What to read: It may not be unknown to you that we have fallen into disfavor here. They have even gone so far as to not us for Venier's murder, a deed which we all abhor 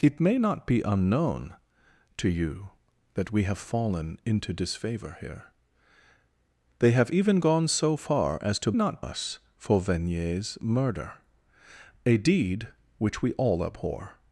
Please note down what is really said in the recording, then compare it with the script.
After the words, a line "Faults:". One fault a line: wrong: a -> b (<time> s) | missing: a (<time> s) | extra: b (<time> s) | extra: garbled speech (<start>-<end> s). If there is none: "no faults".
It may not be unknown to you that we have fallen into disfavor here. They have even gone so far as to not us for Venier's murder, a deed which we all abhor
Faults:
no faults